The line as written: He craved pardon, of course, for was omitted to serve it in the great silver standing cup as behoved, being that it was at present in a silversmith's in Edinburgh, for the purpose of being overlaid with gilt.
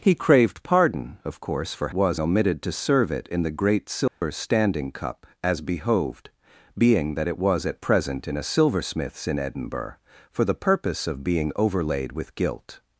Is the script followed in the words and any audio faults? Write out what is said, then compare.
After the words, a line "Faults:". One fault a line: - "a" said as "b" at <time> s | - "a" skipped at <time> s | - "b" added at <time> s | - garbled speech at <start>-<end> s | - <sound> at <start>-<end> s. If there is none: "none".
He craved pardon, of course, for was omitted to serve it in the great silver standing cup as behoved, being that it was at present in a silversmith's in Edinburgh, for the purpose of being overlaid with gilt.
Faults:
- dropout at 4.1-4.2 s